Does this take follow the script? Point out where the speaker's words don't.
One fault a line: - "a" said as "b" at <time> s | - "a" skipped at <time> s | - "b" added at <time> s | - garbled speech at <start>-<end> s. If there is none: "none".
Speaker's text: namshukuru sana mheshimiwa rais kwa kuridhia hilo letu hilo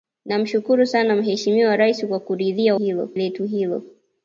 none